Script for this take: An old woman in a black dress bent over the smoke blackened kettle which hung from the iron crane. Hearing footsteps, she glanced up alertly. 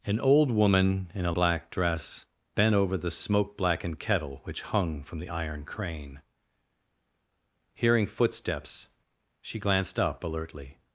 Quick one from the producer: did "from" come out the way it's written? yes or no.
yes